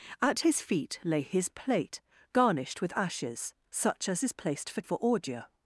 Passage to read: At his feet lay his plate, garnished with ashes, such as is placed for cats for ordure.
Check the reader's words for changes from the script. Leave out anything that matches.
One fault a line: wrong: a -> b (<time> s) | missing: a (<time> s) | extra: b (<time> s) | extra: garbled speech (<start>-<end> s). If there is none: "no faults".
missing: cats (4.8 s)